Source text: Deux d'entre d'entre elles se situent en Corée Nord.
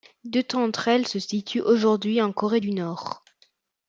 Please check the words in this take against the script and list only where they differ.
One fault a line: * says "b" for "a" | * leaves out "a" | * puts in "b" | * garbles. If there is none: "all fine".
* leaves out "d'entre"
* puts in "aujourd'hui"
* puts in "du"